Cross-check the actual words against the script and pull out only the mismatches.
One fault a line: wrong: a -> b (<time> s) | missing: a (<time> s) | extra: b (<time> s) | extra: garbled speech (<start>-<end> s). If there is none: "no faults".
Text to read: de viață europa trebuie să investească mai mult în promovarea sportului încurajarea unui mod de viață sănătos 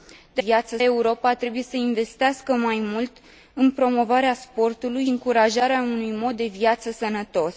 no faults